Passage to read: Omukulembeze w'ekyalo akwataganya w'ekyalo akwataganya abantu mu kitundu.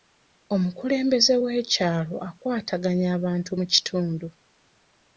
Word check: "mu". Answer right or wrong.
right